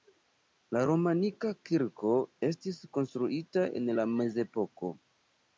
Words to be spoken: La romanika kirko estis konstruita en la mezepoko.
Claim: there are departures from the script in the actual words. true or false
false